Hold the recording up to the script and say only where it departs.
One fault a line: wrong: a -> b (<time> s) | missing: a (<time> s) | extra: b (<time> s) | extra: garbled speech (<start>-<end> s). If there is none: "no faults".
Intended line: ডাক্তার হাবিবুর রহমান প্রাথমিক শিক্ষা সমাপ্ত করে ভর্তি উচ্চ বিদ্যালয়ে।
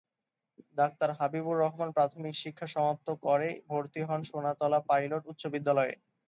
extra: হন সোনাতলা পাইলট (4.1 s)